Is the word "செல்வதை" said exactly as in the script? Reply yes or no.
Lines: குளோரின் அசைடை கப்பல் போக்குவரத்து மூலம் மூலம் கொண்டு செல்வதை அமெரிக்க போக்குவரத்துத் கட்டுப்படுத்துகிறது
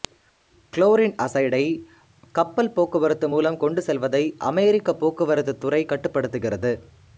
yes